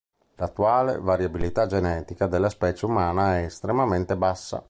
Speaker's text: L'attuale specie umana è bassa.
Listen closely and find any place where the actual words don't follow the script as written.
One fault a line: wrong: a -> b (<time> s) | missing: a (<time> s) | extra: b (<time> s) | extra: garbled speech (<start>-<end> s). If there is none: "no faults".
extra: variabilità genetica della (1.0 s)
extra: estremamente (3.4 s)